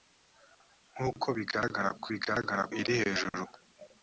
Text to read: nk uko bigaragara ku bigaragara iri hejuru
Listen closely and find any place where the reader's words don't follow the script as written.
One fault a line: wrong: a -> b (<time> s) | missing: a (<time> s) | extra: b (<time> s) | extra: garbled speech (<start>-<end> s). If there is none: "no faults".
no faults